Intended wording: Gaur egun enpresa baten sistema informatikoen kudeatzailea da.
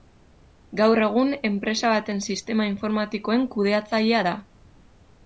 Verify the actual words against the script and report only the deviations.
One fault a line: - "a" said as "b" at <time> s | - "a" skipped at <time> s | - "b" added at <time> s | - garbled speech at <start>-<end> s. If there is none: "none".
none